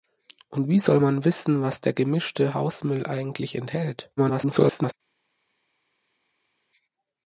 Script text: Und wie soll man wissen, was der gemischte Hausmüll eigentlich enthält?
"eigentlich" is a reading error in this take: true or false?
false